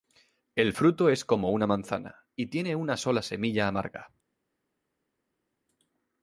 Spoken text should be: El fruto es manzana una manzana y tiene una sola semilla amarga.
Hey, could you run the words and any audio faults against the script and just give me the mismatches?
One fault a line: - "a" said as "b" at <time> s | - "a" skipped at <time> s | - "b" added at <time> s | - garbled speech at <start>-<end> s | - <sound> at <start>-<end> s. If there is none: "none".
- "manzana" said as "como" at 1.2 s